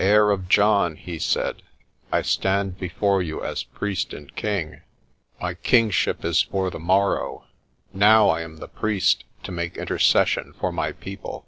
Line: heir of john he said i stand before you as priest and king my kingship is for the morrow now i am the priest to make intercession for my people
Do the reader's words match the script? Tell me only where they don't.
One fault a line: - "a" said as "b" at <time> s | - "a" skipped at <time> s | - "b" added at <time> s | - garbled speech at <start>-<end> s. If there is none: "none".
none